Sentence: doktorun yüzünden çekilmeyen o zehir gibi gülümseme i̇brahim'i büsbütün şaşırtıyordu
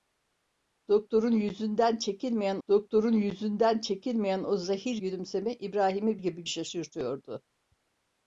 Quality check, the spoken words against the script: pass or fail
fail